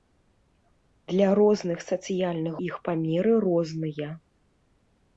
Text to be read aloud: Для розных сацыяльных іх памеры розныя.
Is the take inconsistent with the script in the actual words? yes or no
no